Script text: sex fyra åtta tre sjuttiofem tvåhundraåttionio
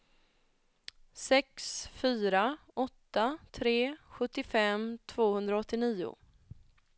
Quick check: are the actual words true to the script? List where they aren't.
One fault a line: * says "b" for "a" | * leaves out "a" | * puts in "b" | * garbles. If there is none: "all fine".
all fine